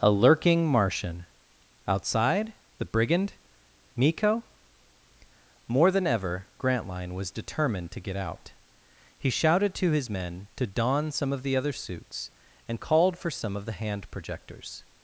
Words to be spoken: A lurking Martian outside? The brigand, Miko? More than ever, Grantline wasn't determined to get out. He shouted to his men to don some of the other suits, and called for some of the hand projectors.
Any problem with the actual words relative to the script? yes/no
yes